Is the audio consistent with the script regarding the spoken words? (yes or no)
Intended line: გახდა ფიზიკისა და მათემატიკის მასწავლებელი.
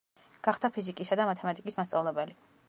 yes